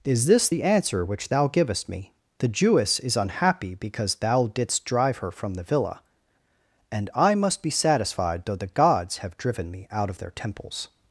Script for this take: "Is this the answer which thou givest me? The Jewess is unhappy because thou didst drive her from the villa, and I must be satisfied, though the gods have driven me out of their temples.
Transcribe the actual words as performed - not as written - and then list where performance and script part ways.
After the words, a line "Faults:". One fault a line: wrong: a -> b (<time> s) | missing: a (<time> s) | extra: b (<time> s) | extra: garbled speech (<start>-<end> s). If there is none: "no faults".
"Is this the answer which thou givest me? The Jewess is unhappy because thou didst drive her from the villa, and I must be satisfied, though the gods have driven me out of their temples.
Faults:
no faults